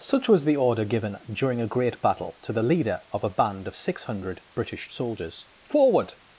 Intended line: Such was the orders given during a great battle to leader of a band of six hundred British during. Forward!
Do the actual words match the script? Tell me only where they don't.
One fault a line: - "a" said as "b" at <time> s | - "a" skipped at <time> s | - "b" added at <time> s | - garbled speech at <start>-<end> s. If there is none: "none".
- "orders" said as "order" at 0.6 s
- "the" added at 2.5 s
- "during" said as "soldiers" at 4.9 s